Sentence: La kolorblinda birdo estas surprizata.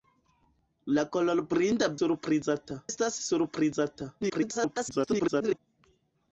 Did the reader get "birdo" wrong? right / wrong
wrong